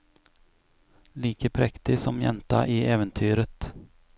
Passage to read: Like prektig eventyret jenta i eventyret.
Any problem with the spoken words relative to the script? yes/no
yes